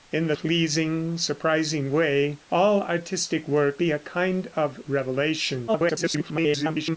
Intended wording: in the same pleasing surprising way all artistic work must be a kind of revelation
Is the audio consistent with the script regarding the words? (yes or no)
no